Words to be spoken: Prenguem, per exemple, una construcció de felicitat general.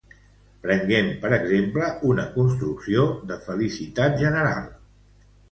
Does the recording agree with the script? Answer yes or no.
yes